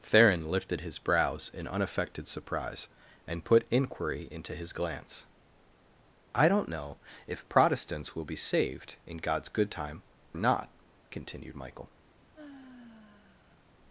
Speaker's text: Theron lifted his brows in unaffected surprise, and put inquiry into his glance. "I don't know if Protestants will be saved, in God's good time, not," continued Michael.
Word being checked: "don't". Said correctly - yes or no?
yes